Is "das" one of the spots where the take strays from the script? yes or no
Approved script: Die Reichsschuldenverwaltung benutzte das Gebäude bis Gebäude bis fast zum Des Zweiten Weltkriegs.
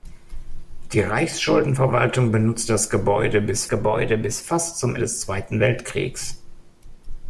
no